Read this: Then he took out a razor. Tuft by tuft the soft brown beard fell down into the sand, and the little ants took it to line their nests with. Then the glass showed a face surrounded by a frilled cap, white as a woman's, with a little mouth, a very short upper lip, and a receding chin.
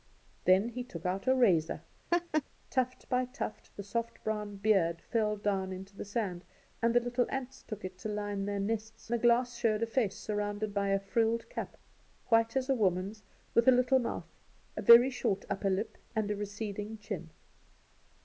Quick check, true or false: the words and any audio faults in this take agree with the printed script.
false